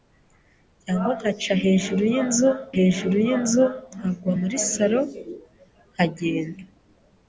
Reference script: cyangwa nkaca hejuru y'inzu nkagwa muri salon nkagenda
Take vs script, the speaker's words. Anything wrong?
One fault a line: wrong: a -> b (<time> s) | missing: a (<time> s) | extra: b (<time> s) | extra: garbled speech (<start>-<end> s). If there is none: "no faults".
extra: hejuru y'inzu (2.8 s)